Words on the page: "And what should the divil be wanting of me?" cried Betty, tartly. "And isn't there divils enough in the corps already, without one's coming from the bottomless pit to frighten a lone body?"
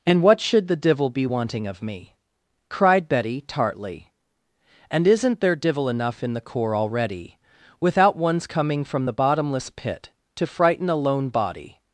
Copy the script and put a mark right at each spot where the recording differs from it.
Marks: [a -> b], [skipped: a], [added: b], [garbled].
"And what should the divil be wanting of me?" cried Betty, tartly. "And isn't there [divils -> divil] enough in the corps already, without one's coming from the bottomless pit to frighten a lone body?"